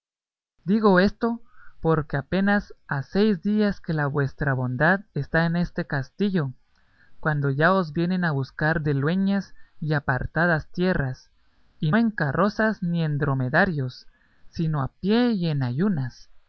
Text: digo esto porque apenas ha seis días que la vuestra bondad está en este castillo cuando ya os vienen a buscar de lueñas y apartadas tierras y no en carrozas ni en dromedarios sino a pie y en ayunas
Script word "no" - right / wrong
wrong